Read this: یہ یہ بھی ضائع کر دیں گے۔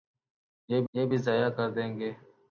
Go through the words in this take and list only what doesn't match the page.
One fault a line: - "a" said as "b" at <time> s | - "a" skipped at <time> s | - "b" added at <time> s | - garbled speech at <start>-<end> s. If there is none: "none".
none